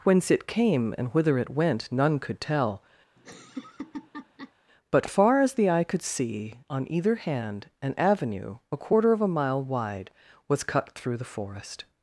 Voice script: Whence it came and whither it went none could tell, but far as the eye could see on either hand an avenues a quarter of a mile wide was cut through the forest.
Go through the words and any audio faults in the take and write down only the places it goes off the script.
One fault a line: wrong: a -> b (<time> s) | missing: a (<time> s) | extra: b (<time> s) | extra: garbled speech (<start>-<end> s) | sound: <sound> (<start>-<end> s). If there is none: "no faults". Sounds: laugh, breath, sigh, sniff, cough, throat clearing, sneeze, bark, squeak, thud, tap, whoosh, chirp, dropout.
sound: laugh (3.2-4.5 s)
wrong: avenues -> avenue (8.0 s)